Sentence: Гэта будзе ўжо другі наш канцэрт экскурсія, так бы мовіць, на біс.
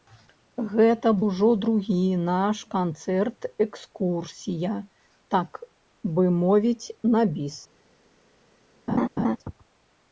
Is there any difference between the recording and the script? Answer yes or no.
yes